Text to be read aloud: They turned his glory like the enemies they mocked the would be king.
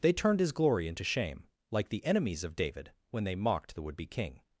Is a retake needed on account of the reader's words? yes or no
yes